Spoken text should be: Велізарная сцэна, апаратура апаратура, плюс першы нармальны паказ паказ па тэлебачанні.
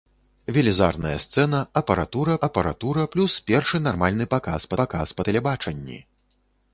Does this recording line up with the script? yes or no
yes